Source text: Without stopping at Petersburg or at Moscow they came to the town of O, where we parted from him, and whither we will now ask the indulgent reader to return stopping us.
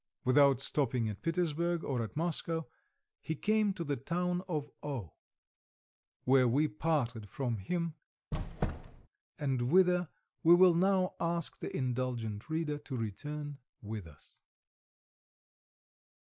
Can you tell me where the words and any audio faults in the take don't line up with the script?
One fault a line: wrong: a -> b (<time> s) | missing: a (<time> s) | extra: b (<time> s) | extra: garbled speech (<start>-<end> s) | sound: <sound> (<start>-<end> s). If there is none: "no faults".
wrong: they -> he (3.2 s)
sound: squeak (8.3-9.1 s)
wrong: stopping -> with (13.8 s)